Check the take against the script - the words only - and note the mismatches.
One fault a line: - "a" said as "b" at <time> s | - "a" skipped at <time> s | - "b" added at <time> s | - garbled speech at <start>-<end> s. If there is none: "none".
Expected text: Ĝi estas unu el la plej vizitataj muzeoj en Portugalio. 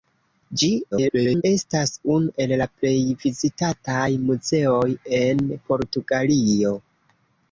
- garbled speech at 0.9-1.4 s